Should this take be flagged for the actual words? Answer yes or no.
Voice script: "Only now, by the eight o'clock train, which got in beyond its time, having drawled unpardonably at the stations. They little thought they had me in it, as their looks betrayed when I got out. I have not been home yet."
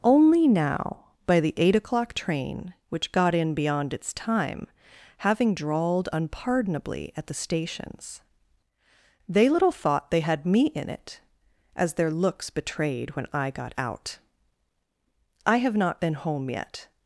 no